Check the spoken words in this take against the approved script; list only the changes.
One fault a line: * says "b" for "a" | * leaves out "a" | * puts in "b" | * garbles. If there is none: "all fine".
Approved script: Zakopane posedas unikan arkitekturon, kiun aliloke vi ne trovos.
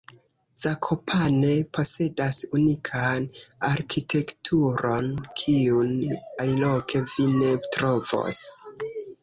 all fine